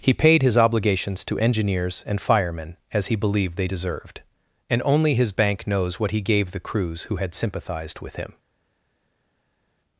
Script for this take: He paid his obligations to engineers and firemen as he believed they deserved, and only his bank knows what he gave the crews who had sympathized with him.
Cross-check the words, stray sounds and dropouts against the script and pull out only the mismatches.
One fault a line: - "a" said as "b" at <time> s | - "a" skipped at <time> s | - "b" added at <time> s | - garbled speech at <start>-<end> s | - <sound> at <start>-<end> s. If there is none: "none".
none